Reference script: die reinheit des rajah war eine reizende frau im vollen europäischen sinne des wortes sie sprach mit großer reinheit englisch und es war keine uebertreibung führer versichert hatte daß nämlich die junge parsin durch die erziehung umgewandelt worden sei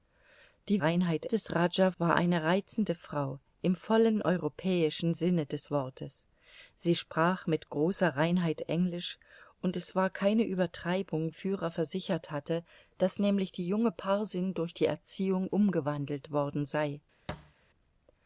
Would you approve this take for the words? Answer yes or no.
yes